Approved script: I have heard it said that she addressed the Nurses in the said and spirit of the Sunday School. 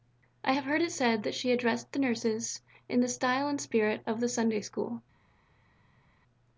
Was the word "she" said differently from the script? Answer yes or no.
no